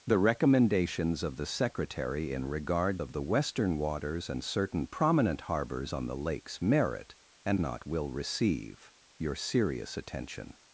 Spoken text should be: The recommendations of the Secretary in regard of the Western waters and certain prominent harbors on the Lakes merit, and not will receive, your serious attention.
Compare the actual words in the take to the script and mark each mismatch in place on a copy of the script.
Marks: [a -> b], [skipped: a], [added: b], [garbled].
The recommendations of the Secretary in regard of the Western waters and certain prominent harbors on the Lakes merit, and not will receive, your serious attention.